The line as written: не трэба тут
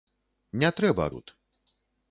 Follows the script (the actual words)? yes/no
yes